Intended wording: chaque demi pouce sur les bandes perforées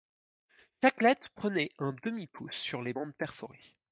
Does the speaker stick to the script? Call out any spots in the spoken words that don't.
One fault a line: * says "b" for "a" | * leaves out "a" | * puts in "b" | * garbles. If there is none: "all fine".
* puts in "lettre prenait un"